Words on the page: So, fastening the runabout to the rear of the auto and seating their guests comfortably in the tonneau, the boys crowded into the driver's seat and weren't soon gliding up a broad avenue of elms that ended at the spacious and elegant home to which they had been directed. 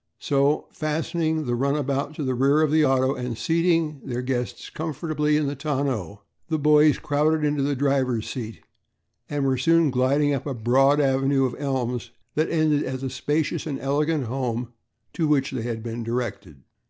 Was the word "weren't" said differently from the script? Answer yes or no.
yes